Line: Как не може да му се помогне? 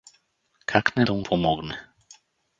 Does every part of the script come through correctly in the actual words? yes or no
no